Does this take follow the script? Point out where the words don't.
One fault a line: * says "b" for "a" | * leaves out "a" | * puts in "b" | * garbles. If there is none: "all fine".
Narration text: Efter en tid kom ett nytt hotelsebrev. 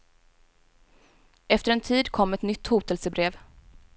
all fine